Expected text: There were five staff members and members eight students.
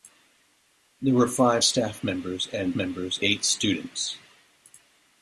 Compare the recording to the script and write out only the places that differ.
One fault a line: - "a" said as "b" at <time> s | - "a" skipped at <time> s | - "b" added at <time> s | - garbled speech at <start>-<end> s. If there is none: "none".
none